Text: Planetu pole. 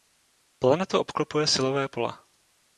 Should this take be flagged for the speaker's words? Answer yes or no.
yes